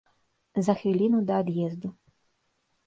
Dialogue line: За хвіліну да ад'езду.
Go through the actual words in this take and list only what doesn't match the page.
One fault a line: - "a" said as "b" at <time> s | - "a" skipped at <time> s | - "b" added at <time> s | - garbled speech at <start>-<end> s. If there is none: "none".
none